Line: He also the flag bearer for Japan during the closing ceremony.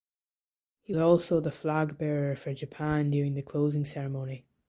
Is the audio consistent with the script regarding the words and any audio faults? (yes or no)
yes